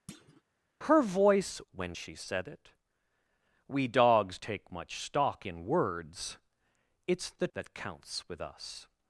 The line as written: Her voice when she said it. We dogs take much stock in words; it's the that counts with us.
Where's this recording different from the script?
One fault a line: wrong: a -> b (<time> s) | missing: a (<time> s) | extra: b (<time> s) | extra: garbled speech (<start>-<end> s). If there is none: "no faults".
no faults